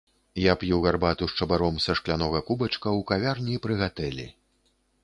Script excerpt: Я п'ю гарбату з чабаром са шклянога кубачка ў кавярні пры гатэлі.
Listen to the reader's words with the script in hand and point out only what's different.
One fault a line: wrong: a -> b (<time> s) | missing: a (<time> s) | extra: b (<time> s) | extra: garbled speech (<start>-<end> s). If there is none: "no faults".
no faults